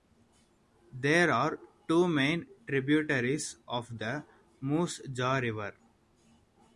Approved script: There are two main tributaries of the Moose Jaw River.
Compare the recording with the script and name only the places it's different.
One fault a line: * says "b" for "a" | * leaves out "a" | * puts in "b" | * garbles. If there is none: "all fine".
all fine